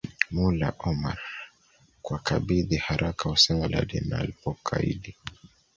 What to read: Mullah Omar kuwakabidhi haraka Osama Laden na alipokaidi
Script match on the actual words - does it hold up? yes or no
yes